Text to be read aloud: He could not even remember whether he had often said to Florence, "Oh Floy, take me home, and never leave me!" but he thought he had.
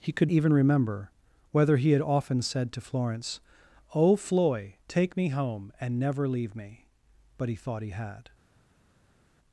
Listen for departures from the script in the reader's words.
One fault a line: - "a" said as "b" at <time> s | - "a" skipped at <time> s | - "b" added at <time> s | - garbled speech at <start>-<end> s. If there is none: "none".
- "not" skipped at 0.3 s